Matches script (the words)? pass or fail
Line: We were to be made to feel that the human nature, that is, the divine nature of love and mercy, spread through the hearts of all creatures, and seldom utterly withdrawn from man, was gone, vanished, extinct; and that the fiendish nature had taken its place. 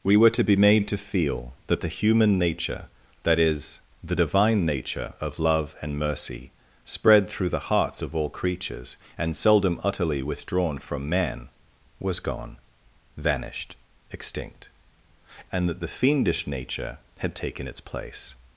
pass